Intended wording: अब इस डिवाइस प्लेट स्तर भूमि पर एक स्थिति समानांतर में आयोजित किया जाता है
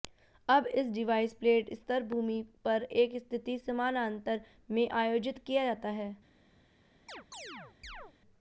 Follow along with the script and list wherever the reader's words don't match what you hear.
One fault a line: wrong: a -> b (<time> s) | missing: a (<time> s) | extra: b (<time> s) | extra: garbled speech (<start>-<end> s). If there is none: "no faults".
no faults